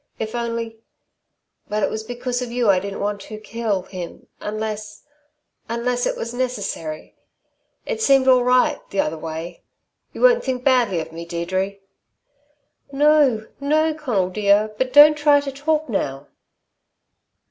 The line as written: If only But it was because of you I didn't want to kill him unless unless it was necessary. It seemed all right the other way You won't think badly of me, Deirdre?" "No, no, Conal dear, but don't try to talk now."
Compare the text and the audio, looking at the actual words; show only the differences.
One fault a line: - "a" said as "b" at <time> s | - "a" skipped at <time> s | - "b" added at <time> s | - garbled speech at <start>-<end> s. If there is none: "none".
none